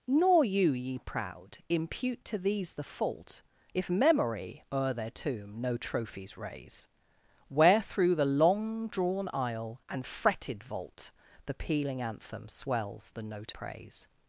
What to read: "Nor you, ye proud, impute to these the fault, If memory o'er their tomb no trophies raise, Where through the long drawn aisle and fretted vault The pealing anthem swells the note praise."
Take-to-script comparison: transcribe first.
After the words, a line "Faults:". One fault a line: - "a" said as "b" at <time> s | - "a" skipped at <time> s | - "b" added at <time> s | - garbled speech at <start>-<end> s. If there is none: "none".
"Nor you, ye proud, impute to these the fault, If memory o'er their tomb no trophies raise, Where through the long drawn aisle and fretted vault The pealing anthem swells the note praise."
Faults:
none